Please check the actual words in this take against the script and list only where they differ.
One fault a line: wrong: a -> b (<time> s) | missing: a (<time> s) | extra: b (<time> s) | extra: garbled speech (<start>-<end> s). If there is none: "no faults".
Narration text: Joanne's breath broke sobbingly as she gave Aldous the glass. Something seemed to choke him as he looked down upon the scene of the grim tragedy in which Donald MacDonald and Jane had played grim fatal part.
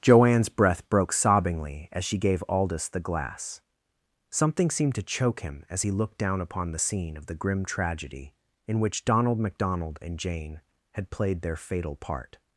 wrong: grim -> their (11.4 s)